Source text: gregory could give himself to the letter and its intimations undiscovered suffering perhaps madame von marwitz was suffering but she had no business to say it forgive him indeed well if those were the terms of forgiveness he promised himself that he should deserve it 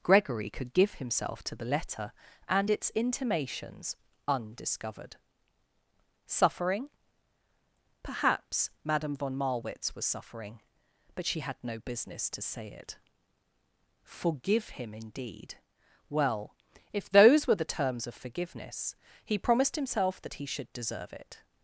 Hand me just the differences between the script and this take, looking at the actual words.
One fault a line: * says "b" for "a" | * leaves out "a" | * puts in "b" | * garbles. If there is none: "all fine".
all fine